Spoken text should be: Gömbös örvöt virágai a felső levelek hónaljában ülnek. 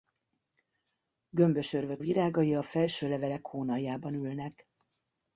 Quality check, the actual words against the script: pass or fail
pass